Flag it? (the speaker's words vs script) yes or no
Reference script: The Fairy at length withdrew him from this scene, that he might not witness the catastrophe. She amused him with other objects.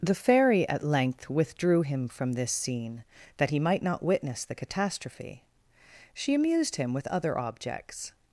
no